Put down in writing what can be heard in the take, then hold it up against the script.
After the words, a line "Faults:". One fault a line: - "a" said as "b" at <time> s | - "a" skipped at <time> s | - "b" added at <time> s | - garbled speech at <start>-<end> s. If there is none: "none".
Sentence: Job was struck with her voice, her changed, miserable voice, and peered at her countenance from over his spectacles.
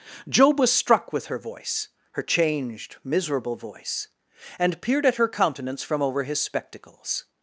Job was struck with her voice, her changed, miserable voice, and peered at her countenance from over his spectacles.
Faults:
none